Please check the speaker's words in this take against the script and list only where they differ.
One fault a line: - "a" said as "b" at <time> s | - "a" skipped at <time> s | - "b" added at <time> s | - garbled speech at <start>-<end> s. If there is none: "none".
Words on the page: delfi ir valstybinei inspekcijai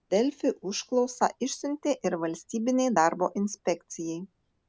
- "užklausą išsiuntė" added at 0.7 s
- "darbo" added at 3.0 s